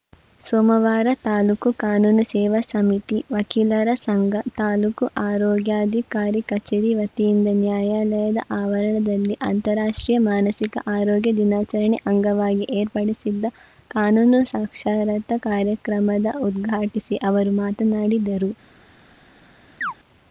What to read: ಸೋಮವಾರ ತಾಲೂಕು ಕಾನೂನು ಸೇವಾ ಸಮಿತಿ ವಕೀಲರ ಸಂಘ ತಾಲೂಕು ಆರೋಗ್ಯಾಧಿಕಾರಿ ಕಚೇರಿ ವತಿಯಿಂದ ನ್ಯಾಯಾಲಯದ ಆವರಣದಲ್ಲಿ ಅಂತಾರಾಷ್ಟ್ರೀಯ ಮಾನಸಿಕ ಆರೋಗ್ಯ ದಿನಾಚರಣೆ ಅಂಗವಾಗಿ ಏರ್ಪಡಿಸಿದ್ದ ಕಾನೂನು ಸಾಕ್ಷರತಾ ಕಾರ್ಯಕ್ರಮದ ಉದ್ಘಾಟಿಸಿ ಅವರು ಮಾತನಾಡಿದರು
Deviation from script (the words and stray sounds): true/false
true